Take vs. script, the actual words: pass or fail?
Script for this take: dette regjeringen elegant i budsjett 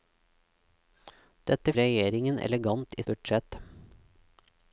pass